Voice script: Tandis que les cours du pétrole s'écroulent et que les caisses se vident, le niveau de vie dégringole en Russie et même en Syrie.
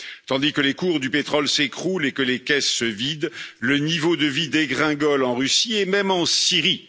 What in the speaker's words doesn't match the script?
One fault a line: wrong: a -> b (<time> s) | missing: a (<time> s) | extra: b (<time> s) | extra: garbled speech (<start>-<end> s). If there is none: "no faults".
no faults